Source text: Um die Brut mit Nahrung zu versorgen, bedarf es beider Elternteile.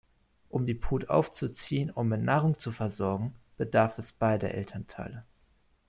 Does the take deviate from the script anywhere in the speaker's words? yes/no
yes